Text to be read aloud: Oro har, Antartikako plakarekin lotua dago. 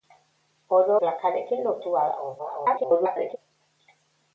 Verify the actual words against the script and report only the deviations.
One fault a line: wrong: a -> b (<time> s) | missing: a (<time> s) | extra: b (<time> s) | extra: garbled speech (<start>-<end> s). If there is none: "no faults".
missing: har Antartikako (0.9 s)
extra: garbled speech (2.4-3.4 s)